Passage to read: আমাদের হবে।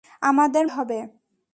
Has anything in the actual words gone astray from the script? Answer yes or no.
no